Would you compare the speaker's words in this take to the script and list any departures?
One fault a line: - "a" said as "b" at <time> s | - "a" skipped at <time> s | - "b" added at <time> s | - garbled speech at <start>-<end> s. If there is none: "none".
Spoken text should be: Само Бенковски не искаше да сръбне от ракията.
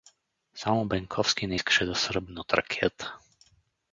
none